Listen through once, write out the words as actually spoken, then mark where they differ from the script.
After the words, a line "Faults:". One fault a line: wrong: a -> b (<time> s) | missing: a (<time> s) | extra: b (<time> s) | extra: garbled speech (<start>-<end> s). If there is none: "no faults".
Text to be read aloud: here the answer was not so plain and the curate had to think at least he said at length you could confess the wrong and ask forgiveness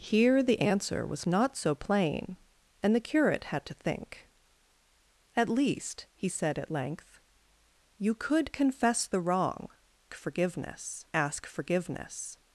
here the answer was not so plain and the curate had to think at least he said at length you could confess the wrong forgiveness ask forgiveness
Faults:
wrong: and -> forgiveness (10.1 s)